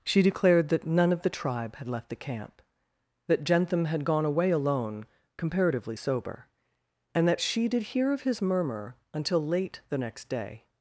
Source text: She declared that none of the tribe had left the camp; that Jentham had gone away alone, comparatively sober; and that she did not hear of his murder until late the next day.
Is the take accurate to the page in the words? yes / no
no